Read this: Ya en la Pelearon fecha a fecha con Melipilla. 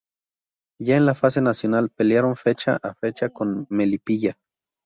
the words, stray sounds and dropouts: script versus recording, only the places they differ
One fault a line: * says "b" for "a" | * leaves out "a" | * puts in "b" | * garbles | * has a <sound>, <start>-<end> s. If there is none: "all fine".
* puts in "Fase Nacional"